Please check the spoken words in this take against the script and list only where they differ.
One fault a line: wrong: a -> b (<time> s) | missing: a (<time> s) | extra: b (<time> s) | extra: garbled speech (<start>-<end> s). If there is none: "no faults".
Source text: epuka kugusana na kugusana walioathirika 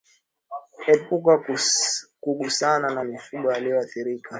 wrong: kugusana -> mifugo (3.0 s)